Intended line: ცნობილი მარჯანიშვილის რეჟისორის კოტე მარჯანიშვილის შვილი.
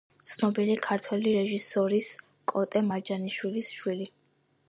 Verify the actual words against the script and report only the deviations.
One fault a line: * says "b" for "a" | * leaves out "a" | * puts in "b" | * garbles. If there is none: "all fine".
* says "ქართველი" for "მარჯანიშვილის"